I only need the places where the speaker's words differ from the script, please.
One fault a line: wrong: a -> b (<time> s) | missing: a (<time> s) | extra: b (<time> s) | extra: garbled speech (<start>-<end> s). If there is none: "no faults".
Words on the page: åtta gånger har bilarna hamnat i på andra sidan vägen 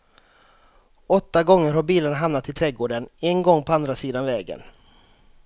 extra: trädgården en gång (2.5 s)